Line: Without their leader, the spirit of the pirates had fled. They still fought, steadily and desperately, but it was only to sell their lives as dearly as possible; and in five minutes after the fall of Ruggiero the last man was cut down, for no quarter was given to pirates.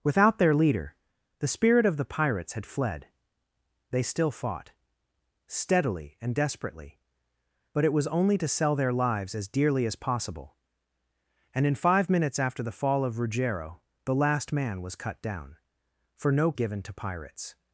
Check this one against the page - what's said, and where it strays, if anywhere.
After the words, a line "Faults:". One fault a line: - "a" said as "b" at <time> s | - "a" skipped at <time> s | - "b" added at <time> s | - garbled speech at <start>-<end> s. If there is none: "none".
Without their leader, the spirit of the pirates had fled. They still fought, steadily and desperately, but it was only to sell their lives as dearly as possible; and in five minutes after the fall of Ruggiero the last man was cut down, for no given to pirates.
Faults:
- "quarter was" skipped at 16.5 s